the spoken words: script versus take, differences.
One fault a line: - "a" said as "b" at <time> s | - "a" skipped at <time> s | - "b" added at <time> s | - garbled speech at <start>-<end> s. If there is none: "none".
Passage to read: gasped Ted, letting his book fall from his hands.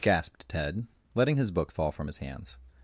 none